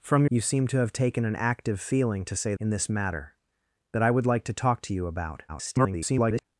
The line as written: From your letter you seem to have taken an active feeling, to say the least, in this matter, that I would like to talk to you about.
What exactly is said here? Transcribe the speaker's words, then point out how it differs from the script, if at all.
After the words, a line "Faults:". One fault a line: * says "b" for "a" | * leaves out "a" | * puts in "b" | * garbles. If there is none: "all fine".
From you seem to have taken an active feeling, to say in this matter, that I would like to talk to you about. [garbled]
Faults:
* leaves out "your letter"
* leaves out "the least"
* garbles